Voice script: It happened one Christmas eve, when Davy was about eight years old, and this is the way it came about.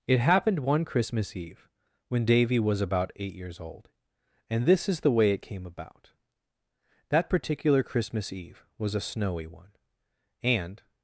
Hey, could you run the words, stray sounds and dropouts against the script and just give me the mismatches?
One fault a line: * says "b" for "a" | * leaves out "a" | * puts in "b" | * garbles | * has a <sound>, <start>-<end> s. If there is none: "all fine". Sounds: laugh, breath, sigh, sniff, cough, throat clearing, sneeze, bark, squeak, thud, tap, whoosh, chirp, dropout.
* puts in "That particular Christmas eve was a snowy one and"